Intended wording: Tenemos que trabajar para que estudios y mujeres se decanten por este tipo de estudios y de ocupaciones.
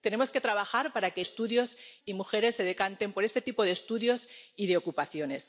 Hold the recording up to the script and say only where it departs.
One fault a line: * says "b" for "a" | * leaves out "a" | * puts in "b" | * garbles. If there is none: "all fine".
all fine